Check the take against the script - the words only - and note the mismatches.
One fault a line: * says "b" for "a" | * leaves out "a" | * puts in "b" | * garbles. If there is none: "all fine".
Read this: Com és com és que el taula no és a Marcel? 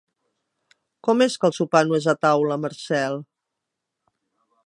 * leaves out "com és"
* says "sopar" for "taula"
* puts in "taula"